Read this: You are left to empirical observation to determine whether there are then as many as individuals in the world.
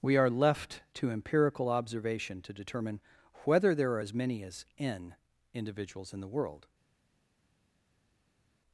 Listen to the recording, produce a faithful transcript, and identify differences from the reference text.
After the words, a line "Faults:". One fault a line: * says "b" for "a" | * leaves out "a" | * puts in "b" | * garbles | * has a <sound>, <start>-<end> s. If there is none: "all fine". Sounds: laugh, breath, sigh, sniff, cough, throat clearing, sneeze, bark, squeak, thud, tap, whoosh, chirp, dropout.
We are left to empirical observation to determine whether there are as many as n individuals in the world.
Faults:
* says "We" for "You"
* leaves out "then"
* puts in "n"